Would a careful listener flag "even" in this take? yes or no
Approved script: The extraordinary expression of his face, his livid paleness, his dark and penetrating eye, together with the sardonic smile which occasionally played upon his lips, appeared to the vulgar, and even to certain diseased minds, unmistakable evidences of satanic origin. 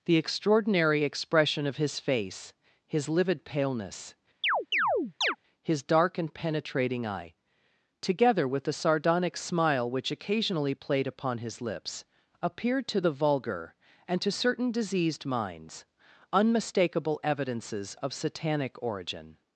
yes